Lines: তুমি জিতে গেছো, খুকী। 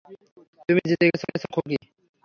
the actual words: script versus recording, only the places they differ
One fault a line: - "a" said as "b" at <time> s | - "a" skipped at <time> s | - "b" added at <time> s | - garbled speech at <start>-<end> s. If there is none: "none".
- "গেছো" added at 1.3 s